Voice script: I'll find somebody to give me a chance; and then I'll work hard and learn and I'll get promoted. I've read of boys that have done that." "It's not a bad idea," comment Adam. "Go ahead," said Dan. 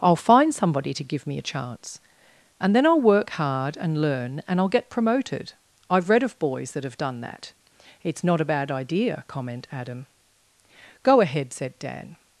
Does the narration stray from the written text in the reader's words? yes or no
no